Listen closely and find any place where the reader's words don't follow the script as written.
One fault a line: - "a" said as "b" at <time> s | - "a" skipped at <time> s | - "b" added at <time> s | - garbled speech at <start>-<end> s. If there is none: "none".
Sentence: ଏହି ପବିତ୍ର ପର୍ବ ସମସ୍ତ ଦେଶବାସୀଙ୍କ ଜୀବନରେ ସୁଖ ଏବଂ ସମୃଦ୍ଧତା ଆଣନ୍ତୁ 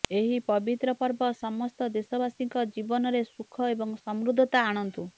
none